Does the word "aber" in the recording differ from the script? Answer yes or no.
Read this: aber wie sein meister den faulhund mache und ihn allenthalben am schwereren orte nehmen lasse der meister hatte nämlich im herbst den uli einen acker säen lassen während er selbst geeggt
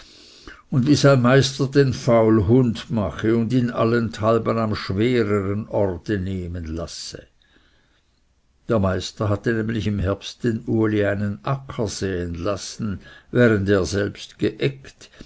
yes